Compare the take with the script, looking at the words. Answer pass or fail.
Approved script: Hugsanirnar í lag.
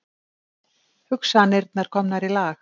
fail